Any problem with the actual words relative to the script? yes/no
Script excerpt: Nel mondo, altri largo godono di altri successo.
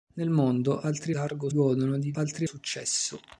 no